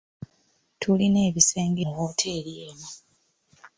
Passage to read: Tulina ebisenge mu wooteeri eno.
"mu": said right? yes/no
yes